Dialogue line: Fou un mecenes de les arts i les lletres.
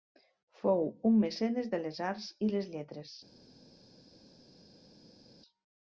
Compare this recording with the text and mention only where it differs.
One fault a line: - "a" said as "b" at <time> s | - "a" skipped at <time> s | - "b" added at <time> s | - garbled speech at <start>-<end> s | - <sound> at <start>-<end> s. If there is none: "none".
none